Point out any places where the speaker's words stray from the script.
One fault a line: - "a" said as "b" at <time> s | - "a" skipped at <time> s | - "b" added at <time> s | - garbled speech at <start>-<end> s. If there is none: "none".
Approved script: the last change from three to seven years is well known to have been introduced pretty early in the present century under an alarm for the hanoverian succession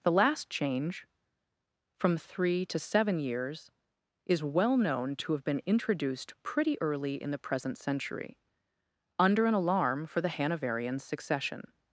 none